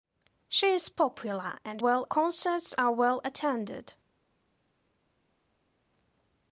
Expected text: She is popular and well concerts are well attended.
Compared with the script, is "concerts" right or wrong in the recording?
right